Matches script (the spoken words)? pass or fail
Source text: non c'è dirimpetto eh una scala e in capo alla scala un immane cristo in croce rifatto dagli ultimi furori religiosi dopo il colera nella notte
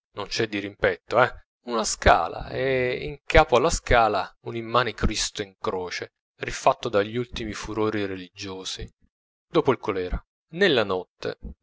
pass